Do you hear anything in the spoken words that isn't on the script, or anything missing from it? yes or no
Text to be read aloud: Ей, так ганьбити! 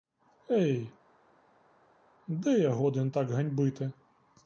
yes